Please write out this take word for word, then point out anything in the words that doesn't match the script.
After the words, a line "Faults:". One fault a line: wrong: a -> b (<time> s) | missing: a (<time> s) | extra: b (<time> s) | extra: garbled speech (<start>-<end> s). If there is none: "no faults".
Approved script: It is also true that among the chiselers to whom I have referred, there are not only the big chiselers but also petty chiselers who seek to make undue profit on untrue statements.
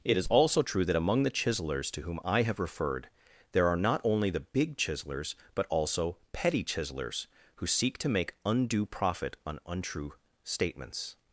It is also true that among the chiselers to whom I have referred, there are not only the big chiselers but also petty chiselers who seek to make undue profit on untrue statements.
Faults:
no faults